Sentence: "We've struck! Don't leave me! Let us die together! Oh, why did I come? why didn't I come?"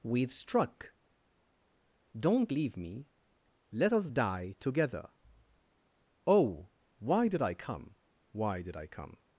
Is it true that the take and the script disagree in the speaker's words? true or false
true